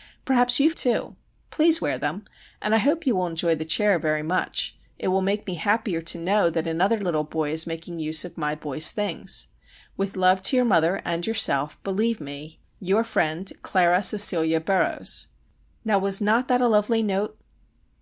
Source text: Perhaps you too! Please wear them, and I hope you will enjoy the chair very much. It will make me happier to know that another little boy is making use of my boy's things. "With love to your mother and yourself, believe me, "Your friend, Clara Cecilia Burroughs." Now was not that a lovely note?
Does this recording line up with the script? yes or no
yes